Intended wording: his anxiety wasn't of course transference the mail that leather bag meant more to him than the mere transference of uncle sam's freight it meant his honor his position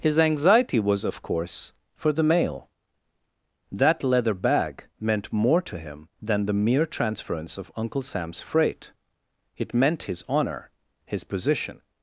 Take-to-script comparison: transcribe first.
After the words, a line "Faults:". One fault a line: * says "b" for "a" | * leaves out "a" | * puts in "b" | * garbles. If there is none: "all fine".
his anxiety was of course for the mail that leather bag meant more to him than the mere transference of uncle sam's freight it meant his honor his position
Faults:
* says "was" for "wasn't"
* says "for" for "transference"